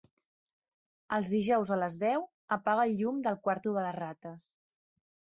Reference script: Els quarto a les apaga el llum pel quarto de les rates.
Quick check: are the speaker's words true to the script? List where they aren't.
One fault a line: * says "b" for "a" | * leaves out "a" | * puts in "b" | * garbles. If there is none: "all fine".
* says "dijous" for "quarto"
* puts in "deu"
* says "del" for "pel"